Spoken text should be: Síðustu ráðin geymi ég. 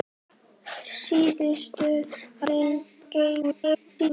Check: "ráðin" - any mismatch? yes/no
yes